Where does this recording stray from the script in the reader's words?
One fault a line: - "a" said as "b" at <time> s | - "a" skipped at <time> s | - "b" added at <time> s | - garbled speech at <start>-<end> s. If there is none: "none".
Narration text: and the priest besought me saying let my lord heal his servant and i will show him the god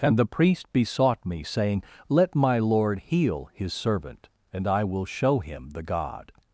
none